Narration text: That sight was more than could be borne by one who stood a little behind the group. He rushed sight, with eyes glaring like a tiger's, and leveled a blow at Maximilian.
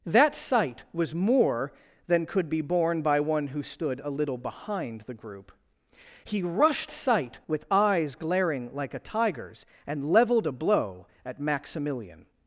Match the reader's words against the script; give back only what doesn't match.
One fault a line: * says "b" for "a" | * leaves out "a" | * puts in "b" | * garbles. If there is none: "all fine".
all fine